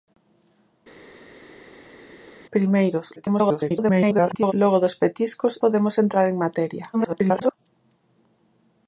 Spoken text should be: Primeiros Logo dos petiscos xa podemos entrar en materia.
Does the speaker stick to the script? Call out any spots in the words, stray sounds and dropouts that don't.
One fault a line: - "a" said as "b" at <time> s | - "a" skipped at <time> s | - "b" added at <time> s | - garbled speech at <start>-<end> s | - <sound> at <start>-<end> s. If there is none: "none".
- garbled speech at 3.2-4.5 s
- "xa" skipped at 5.5 s
- garbled speech at 6.9-7.5 s